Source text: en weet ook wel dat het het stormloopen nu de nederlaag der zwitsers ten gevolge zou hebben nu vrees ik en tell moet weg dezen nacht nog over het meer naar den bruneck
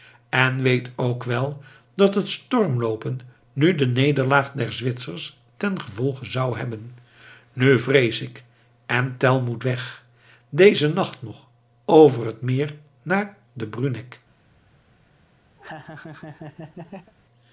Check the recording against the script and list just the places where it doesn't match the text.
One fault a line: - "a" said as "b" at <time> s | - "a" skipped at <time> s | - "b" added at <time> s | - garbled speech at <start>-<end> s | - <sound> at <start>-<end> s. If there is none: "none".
- "het" skipped at 2.3 s
- laugh at 15.6-17.1 s